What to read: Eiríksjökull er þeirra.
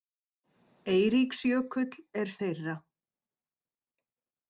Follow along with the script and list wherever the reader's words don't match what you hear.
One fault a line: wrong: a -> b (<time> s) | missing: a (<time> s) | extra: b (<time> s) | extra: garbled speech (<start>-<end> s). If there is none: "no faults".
no faults